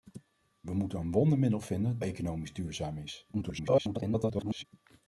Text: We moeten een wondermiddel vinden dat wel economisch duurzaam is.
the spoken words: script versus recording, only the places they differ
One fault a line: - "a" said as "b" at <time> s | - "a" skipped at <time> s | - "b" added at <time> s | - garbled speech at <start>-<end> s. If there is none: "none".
- "dat wel" skipped at 2.0 s
- garbled speech at 3.3-4.7 s